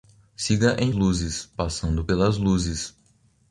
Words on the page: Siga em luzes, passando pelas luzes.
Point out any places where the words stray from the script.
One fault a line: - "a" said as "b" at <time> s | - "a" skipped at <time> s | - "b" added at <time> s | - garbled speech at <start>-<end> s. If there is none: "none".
none